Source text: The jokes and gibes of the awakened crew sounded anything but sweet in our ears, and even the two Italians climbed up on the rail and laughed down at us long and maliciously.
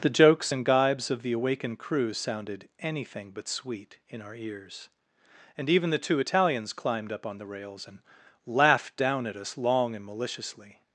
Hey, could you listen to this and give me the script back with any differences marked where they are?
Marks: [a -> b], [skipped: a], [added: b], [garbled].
The jokes and gibes of the awakened crew sounded anything but sweet in our ears, and even the two Italians climbed up on the [rail -> rails] and laughed down at us long and maliciously.